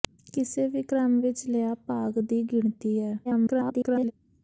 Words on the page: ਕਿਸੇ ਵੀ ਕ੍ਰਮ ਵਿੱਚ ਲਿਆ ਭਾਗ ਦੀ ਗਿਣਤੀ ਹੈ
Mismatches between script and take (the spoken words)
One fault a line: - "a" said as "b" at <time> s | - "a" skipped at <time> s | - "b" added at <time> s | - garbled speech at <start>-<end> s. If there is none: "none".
- garbled speech at 3.2-4.1 s